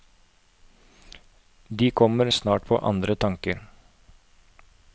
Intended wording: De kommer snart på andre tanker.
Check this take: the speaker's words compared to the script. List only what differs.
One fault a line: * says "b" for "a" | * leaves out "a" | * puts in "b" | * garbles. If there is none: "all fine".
all fine